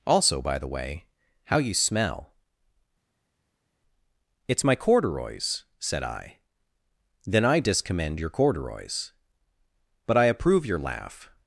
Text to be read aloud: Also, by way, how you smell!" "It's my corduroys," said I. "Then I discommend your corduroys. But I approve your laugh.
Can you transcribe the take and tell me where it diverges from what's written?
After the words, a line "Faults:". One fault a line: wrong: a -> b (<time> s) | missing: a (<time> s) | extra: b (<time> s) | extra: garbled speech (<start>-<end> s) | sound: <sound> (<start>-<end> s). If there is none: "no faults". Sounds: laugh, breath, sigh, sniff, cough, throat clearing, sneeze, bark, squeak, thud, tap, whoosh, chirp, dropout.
Also, by the way, how you smell!" "It's my corduroys," said I. "Then I discommend your corduroys. But I approve your laugh.
Faults:
extra: the (0.6 s)